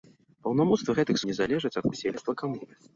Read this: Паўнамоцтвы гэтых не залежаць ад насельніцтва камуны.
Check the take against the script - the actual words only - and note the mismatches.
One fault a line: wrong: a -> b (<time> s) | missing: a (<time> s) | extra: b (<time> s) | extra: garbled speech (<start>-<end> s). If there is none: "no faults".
no faults